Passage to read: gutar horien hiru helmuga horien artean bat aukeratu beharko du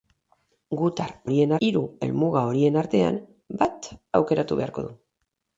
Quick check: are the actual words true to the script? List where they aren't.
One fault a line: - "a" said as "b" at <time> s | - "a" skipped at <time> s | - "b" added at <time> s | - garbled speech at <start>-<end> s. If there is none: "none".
none